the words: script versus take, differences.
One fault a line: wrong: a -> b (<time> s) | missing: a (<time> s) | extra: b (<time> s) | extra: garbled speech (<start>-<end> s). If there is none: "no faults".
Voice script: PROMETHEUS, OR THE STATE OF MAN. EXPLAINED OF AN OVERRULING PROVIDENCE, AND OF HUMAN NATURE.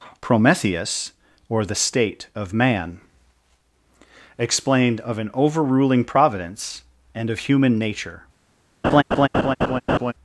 no faults